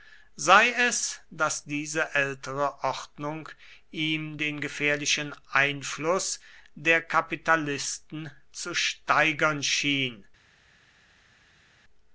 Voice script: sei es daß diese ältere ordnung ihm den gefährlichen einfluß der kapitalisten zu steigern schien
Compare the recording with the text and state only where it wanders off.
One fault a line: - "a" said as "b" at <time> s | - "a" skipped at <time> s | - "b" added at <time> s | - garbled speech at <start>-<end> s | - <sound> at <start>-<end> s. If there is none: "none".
none